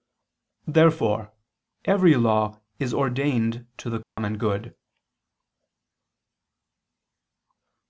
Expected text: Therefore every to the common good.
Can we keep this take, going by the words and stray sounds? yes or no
no